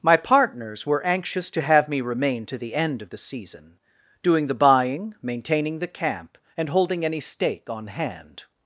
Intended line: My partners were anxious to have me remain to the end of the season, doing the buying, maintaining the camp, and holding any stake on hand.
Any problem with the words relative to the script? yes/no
no